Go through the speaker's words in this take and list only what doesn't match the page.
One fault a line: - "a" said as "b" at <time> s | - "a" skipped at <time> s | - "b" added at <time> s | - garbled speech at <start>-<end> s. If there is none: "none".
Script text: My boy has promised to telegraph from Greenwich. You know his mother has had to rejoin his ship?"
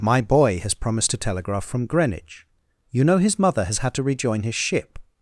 none